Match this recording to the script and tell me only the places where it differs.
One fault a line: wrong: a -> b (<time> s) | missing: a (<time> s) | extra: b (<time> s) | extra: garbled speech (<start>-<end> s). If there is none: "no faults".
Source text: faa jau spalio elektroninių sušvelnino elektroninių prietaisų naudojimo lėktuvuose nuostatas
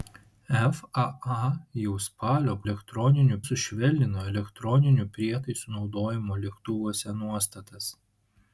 no faults